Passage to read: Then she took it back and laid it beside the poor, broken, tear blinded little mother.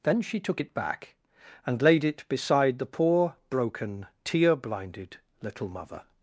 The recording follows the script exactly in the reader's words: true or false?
true